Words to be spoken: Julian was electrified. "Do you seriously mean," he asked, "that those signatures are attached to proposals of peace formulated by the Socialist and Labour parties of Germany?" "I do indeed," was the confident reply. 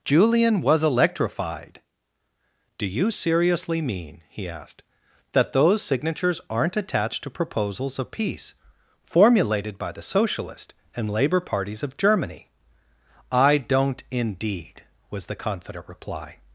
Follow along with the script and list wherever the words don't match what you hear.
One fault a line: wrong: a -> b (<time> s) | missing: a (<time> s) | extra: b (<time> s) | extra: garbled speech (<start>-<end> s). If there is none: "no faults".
wrong: are -> aren't (6.5 s)
wrong: do -> don't (13.6 s)